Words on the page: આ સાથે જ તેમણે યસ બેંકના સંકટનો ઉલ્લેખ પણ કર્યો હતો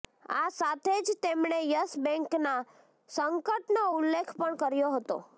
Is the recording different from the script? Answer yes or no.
no